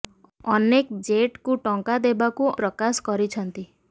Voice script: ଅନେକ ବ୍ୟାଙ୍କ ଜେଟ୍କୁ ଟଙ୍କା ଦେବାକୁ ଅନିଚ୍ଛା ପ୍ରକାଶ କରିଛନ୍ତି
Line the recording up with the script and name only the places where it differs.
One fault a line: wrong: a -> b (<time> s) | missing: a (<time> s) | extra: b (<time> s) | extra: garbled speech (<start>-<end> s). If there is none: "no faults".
missing: ବ୍ୟାଙ୍କ (1.0 s)
missing: ଅନିଚ୍ଛା (2.5 s)